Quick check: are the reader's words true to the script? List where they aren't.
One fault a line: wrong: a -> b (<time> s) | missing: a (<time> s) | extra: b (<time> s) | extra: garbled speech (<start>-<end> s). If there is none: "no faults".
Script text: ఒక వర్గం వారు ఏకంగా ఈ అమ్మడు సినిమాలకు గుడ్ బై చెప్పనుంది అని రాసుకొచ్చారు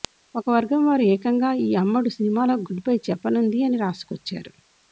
no faults